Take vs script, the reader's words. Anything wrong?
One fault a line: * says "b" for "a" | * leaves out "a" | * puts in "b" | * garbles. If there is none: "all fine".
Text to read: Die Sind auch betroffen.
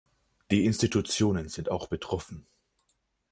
* puts in "Institutionen"